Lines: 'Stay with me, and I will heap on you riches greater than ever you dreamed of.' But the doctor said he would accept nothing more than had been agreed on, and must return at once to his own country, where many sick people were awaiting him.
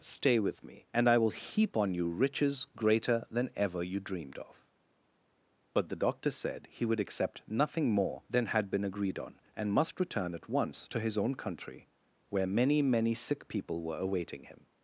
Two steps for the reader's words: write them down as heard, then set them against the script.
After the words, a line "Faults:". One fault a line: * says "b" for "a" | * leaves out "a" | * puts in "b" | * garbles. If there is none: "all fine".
'Stay with me, and I will heap on you riches greater than ever you dreamed of.' But the doctor said he would accept nothing more than had been agreed on, and must return at once to his own country, where many many sick people were awaiting him.
Faults:
* puts in "many"